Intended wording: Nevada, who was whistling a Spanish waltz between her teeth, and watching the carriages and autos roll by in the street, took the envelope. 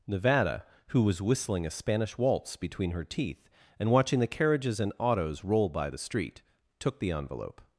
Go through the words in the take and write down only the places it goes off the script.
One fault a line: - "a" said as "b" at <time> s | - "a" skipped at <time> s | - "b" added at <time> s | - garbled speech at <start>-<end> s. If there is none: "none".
- "in" skipped at 5.9 s